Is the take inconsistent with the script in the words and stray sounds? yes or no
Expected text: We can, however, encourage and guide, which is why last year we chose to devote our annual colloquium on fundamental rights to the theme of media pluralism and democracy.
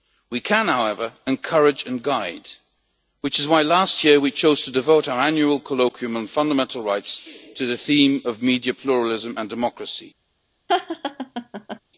yes